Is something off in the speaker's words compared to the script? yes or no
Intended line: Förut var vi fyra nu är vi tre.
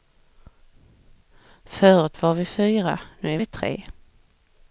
no